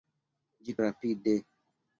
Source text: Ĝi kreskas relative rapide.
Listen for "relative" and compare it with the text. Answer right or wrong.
wrong